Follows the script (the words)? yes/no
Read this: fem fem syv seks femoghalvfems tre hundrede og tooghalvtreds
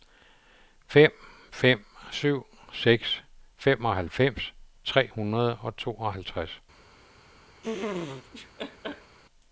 yes